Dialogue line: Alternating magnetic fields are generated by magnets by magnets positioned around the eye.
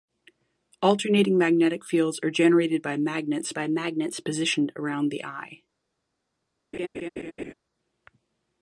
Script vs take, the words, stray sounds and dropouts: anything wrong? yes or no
yes